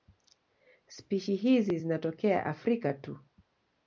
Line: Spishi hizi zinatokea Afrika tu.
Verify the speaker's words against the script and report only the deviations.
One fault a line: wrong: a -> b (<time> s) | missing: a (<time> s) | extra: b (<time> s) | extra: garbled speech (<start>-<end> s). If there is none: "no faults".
no faults